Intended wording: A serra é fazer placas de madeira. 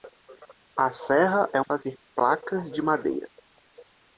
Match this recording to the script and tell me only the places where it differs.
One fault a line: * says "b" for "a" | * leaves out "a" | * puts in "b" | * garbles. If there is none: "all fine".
all fine